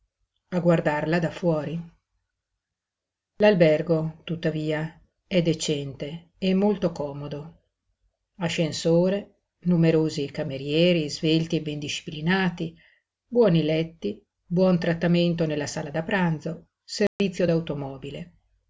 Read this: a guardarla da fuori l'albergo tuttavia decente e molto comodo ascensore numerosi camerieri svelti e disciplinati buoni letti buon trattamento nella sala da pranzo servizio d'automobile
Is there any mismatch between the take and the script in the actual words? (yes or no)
yes